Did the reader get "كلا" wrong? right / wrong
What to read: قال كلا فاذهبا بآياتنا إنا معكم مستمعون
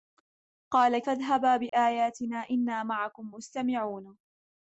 wrong